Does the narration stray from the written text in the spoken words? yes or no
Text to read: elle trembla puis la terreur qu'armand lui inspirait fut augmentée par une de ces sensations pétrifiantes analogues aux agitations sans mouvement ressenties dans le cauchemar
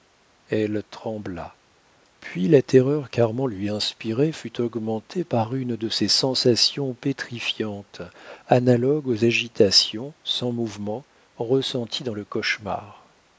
no